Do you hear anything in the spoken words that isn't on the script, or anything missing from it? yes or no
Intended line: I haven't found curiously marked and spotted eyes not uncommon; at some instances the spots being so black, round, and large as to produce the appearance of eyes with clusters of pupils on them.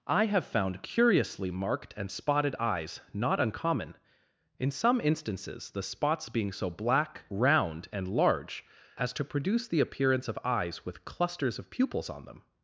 yes